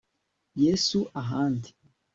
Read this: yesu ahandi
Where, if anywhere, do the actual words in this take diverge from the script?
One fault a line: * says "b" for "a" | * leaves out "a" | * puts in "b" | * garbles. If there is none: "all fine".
all fine